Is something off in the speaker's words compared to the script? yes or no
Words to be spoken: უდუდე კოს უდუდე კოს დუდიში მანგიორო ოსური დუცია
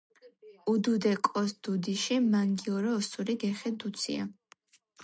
yes